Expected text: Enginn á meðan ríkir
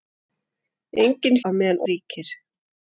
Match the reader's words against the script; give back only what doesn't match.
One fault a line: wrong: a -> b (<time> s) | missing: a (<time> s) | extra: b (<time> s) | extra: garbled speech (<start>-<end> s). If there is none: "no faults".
no faults